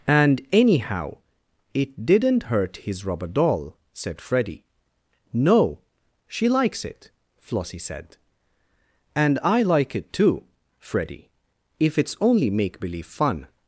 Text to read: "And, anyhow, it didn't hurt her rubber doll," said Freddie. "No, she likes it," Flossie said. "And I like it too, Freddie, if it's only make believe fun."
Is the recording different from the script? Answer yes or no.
yes